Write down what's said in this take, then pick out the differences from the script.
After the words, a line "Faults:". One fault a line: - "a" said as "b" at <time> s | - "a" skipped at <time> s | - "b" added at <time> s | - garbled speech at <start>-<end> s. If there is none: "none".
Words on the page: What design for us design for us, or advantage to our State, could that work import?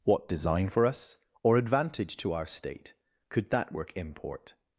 What design for us, or advantage to our State, could that work import?
Faults:
- "design for us" skipped at 1.2 s